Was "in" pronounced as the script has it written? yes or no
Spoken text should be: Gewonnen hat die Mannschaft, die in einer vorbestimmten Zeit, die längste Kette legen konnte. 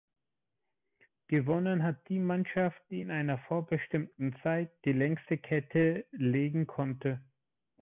yes